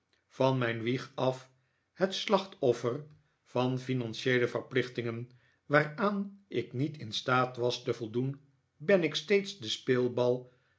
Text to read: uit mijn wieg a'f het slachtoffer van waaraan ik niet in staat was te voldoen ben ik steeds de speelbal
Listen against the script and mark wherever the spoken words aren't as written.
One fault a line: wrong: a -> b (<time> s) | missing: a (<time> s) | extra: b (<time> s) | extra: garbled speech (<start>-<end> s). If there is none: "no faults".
wrong: uit -> van (0.3 s)
extra: financieele verplichtingen (3.8 s)